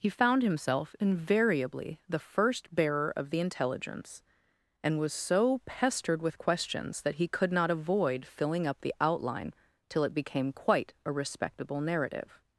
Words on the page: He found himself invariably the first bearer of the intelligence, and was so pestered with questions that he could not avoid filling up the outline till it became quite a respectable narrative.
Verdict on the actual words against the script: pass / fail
pass